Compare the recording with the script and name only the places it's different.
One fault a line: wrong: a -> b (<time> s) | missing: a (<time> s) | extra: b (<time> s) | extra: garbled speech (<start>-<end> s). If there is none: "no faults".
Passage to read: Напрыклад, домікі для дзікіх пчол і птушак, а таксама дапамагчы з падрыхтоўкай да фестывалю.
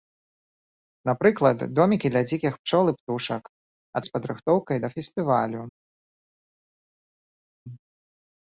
missing: таксама дапамагчы (4.0 s)